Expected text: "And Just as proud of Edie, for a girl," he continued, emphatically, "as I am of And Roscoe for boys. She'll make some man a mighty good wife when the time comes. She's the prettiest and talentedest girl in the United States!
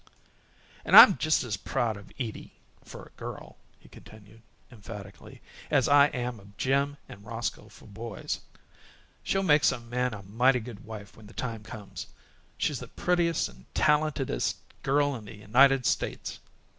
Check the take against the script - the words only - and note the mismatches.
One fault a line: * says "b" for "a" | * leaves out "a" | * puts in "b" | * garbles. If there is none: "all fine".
* puts in "I'm"
* puts in "Jim"